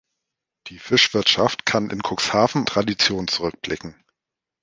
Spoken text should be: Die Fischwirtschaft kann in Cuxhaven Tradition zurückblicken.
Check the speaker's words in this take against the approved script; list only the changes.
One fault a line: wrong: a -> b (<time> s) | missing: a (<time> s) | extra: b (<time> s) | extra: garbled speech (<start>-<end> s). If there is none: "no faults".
no faults